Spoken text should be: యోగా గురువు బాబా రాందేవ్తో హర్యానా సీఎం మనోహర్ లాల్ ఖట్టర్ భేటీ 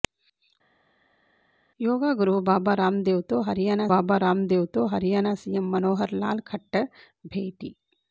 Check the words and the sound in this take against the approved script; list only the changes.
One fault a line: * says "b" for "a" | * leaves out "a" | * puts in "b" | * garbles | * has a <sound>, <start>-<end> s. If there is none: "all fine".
* puts in "బాబా రాందేవ్తో హర్యానా"